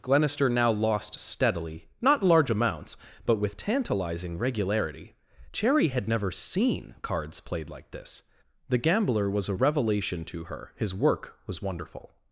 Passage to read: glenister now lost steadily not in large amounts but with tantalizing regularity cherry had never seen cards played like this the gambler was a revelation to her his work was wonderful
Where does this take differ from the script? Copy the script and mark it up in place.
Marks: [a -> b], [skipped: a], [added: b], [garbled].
glenister now lost steadily not [skipped: in] large amounts but with tantalizing regularity cherry had never seen cards played like this the gambler was a revelation to her his work was wonderful